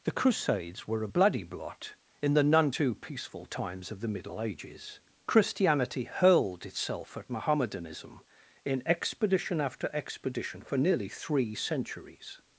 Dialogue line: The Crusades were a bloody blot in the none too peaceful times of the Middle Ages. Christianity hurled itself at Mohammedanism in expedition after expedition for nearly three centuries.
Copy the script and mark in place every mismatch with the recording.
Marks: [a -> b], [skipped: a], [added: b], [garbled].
The Crusades were a bloody blot in the none too peaceful times of the Middle Ages. Christianity hurled itself at Mohammedanism in expedition after expedition for nearly three centuries.